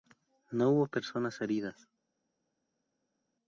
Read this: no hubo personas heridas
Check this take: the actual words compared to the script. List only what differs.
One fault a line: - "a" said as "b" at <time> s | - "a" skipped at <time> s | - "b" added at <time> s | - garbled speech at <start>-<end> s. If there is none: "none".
none